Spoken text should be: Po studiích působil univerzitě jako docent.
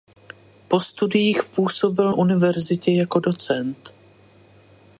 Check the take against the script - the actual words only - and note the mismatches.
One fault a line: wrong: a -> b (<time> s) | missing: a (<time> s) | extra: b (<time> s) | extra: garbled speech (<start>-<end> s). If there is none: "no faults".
no faults